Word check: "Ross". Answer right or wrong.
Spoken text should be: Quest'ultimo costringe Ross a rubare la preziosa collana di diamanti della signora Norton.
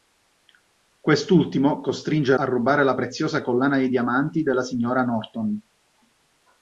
wrong